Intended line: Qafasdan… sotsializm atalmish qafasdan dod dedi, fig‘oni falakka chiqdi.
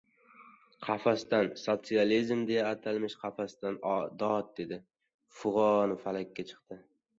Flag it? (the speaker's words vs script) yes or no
yes